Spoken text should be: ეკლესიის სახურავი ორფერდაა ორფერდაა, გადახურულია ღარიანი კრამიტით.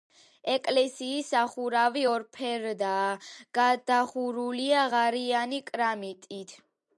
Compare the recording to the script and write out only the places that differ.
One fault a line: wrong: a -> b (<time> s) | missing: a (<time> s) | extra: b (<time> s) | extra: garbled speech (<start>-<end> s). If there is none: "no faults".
missing: ორფერდაა (3.1 s)